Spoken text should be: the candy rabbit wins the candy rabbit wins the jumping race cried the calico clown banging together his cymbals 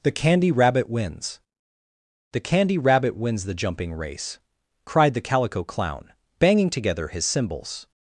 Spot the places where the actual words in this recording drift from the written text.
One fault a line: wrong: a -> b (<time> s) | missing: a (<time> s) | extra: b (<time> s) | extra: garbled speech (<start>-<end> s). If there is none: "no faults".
no faults